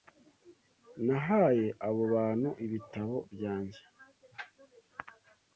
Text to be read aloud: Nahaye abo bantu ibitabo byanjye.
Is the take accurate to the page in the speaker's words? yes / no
yes